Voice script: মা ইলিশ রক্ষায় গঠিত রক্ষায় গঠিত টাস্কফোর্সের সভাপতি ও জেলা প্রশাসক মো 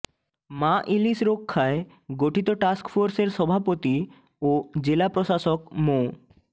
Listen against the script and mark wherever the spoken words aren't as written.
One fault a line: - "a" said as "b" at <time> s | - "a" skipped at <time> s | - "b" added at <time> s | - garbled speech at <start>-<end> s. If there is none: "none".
- "রক্ষায় গঠিত" skipped at 2.5 s